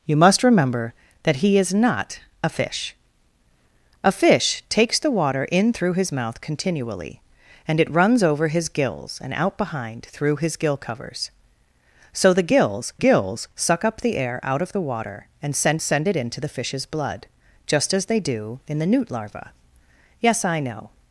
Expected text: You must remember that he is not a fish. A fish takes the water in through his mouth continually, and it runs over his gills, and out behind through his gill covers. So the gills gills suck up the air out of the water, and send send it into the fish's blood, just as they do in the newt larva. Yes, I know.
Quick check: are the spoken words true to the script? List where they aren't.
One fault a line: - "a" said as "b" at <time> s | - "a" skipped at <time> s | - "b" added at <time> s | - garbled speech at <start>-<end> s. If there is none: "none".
none